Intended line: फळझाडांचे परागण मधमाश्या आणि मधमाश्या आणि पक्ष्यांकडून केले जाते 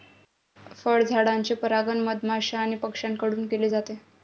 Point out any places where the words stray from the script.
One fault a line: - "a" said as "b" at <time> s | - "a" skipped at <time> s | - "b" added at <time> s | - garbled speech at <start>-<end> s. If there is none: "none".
- "मधमाश्या आणि" skipped at 2.8 s